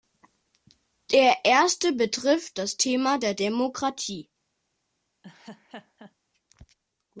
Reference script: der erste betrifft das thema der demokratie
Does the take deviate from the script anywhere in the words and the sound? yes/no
yes